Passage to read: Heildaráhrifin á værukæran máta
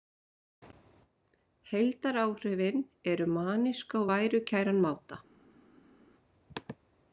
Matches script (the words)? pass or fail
fail